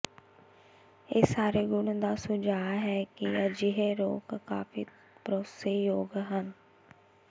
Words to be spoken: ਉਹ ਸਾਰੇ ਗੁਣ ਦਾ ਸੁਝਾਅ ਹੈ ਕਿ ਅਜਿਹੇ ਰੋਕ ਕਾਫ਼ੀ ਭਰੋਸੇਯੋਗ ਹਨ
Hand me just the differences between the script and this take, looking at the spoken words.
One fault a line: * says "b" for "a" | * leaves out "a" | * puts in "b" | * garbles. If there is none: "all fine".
* says "ਇਹ" for "ਉਹ"